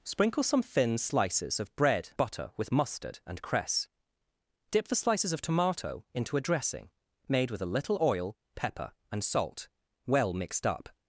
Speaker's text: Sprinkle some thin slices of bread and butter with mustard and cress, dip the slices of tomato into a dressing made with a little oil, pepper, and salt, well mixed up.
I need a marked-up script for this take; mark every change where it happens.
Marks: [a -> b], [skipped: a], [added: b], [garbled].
Sprinkle some thin slices of bread [skipped: and] butter with mustard and cress, dip the slices of tomato into a dressing made with a little oil, pepper, and salt, well mixed up.